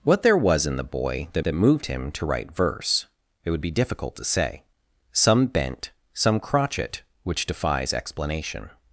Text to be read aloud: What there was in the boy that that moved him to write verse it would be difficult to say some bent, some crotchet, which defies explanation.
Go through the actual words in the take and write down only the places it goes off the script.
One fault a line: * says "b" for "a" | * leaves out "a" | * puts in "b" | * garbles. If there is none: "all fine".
all fine